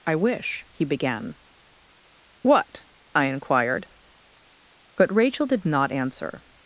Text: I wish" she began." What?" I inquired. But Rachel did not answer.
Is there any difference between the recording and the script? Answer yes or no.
yes